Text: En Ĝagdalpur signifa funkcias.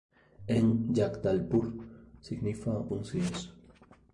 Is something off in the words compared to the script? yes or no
no